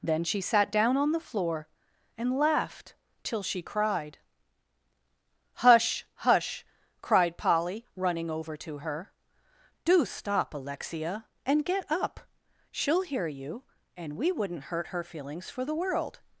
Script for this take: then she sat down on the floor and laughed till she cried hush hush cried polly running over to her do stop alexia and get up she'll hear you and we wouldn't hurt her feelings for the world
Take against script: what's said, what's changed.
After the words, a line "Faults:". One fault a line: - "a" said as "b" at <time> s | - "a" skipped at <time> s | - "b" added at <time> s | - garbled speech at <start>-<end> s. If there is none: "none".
then she sat down on the floor and laughed till she cried hush hush cried polly running over to her do stop alexia and get up she'll hear you and we wouldn't hurt her feelings for the world
Faults:
none